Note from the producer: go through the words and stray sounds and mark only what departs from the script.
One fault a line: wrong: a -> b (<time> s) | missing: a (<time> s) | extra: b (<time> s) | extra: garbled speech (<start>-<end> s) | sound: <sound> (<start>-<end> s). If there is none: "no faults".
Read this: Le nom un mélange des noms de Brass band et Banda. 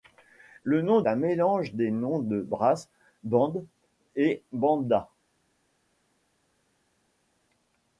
no faults